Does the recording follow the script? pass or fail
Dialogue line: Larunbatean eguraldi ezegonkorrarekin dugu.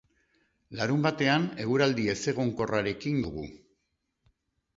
pass